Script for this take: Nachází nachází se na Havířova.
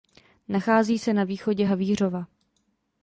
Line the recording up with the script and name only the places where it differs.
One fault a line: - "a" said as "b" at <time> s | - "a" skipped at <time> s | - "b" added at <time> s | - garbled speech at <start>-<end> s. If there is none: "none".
- "nachází" skipped at 1.0 s
- "východě" added at 1.2 s